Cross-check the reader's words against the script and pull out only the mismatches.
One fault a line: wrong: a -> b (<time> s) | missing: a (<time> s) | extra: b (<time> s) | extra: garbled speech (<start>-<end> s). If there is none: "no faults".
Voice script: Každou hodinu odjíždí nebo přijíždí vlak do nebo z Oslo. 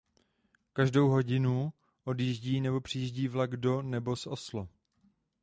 no faults